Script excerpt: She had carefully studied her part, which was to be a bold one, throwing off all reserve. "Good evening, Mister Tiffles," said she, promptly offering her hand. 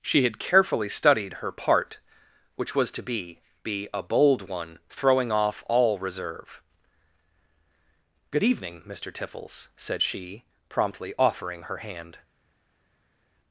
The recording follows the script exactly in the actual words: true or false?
false